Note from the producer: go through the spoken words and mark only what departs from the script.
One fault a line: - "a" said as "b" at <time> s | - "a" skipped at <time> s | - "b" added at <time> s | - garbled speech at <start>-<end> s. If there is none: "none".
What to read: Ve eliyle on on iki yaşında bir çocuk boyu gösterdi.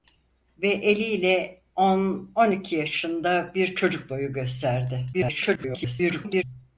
- garbled speech at 5.1-6.4 s